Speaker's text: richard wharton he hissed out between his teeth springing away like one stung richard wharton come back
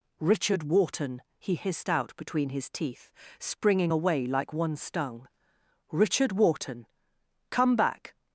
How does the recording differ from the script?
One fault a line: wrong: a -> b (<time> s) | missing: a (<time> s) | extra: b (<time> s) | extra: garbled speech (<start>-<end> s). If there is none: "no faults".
no faults